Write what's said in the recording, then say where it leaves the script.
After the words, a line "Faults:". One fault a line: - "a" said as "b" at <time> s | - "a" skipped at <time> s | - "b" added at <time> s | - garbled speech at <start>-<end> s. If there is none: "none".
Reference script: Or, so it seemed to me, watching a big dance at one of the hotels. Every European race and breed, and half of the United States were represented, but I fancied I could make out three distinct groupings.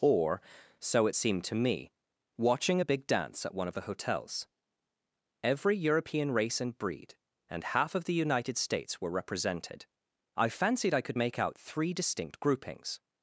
Or, so it seemed to me, watching a big dance at one of the hotels. Every European race and breed, and half of the United States were represented, I fancied I could make out three distinct groupings.
Faults:
- "but" skipped at 9.9 s